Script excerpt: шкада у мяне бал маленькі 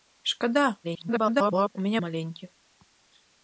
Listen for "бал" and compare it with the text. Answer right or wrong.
wrong